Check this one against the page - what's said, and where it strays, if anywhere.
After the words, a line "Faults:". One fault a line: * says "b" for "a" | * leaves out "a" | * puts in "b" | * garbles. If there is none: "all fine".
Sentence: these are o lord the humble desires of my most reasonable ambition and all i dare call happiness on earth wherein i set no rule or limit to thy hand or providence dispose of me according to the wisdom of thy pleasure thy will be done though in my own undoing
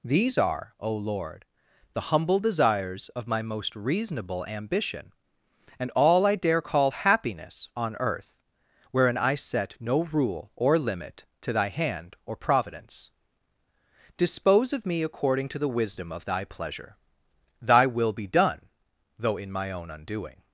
these are o lord the humble desires of my most reasonable ambition and all i dare call happiness on earth wherein i set no rule or limit to thy hand or providence dispose of me according to the wisdom of thy pleasure thy will be done though in my own undoing
Faults:
all fine